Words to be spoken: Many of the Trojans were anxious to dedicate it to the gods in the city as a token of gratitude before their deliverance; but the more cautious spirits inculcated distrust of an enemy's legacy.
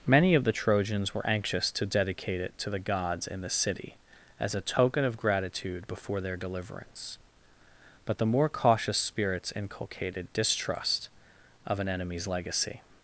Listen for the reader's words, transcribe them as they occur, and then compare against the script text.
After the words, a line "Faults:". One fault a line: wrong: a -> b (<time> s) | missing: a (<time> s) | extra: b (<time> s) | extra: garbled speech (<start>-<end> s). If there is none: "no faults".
Many of the Trojans were anxious to dedicate it to the gods in the city as a token of gratitude before their deliverance; but the more cautious spirits inculcated distrust of an enemy's legacy.
Faults:
no faults